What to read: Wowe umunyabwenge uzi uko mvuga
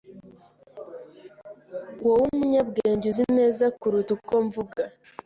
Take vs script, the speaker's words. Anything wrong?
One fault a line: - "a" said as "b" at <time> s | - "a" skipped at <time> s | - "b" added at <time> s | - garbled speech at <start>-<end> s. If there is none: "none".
- "neza kuruta" added at 3.4 s